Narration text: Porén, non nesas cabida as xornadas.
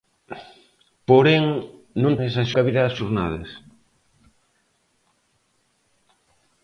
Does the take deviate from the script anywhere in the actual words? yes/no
no